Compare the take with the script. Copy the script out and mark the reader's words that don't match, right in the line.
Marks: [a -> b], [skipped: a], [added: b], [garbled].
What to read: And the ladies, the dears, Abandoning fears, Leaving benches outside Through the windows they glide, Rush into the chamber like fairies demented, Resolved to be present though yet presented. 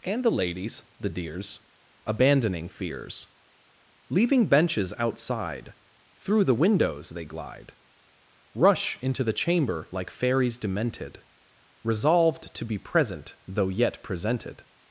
And the ladies, the dears, Abandoning fears, Leaving benches outside Through the windows they glide, Rush into the chamber like fairies demented, Resolved to be present though yet presented.